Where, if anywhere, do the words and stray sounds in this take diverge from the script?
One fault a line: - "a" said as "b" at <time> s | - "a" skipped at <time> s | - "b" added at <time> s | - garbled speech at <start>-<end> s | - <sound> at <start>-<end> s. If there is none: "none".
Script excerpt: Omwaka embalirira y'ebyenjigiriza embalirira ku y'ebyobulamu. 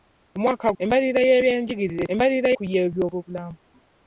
none